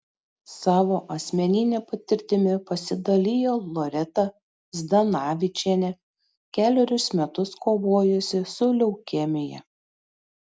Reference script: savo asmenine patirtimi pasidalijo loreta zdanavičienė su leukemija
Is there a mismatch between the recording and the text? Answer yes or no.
yes